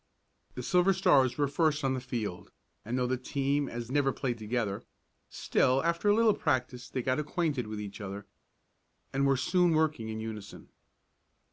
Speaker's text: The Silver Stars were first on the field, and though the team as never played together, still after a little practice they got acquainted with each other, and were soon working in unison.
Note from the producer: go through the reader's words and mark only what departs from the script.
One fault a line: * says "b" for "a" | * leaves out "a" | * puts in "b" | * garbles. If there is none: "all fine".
all fine